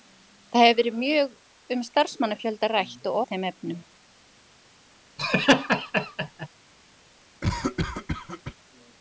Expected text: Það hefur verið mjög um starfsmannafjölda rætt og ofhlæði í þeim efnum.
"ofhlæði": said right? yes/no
no